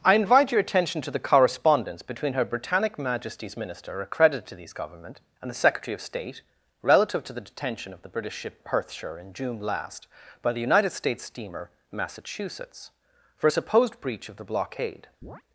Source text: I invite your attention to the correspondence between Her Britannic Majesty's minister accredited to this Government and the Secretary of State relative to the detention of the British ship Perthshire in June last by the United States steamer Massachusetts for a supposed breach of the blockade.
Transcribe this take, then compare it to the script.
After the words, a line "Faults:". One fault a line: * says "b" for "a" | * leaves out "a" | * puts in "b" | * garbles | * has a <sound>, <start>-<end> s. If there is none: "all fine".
I invite your attention to the correspondence between Her Britannic Majesty's minister accredited to these Government and the Secretary of State relative to the detention of the British ship Perthshire in June last by the United States steamer Massachusetts for a supposed breach of the blockade.
Faults:
* says "these" for "this"
* has a chirp, 15.2-15.4 s